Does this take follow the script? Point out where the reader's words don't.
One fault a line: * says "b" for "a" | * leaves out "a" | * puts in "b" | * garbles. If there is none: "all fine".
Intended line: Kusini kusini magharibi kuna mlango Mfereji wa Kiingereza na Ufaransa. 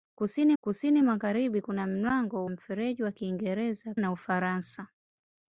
all fine